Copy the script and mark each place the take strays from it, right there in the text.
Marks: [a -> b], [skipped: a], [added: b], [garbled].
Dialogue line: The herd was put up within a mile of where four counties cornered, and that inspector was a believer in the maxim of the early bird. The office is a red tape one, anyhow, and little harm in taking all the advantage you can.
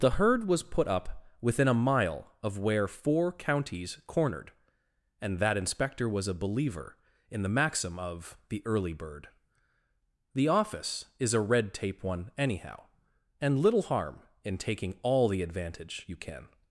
The herd was put up within a mile of where four counties cornered, and that inspector was a believer in the maxim of the early bird. The office is a red tape one, anyhow, and little harm in taking all the advantage you can.